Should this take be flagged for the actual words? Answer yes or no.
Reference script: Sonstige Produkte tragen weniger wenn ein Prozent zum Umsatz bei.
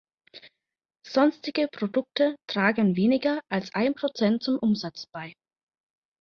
yes